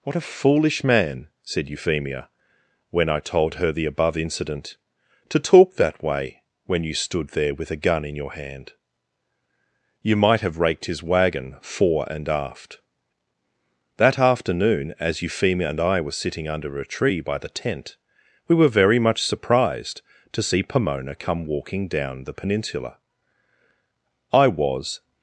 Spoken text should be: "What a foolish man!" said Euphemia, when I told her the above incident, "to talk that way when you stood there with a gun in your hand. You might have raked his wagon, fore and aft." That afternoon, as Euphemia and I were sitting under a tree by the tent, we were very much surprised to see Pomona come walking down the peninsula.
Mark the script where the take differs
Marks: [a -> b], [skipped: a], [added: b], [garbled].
"What a foolish man!" said Euphemia, when I told her the above incident, "to talk that way when you stood there with a gun in your hand. You might have raked his wagon, fore and aft." That afternoon, as Euphemia and I were sitting under a tree by the tent, we were very much surprised to see Pomona come walking down the peninsula. [added: I was]